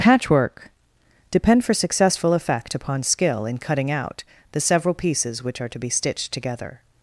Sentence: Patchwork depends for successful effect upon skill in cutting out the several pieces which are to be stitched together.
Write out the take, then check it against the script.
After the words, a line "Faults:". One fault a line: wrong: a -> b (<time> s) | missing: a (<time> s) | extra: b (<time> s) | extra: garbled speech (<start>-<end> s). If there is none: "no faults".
Patchwork depend for successful effect upon skill in cutting out the several pieces which are to be stitched together.
Faults:
wrong: depends -> depend (1.3 s)